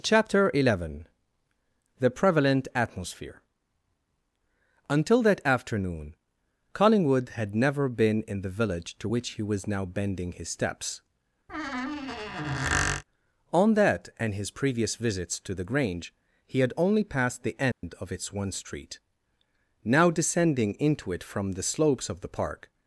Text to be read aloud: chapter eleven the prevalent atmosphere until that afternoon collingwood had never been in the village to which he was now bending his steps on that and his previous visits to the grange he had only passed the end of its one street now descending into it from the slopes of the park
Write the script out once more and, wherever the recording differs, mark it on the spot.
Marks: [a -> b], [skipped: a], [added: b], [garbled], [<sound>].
chapter eleven the prevalent atmosphere until that afternoon collingwood had never been in the village to which he was now bending his steps [squeak] on that and his previous visits to the grange he had only passed the end [dropout] of its one street now descending into it from the slopes of the park